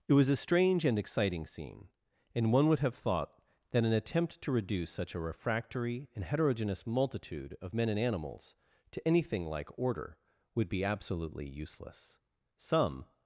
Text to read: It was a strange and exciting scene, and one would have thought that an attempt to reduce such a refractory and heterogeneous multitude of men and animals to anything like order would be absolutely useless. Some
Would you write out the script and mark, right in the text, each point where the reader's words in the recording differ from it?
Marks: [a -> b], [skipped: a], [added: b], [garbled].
It was a strange and exciting scene, and one would have thought that an attempt to reduce such a refractory and heterogeneous multitude of men and animals to anything like order would be absolutely useless. Some